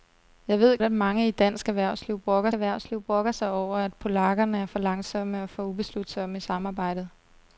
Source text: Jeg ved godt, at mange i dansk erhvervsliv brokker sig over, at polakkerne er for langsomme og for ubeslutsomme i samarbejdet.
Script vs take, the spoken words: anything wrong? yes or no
yes